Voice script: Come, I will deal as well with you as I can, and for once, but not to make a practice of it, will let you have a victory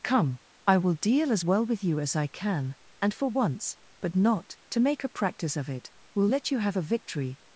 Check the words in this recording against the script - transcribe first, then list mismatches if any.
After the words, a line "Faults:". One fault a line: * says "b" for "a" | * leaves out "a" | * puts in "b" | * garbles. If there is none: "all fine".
Come, I will deal as well with you as I can, and for once, but not to make a practice of it, will let you have a victory
Faults:
all fine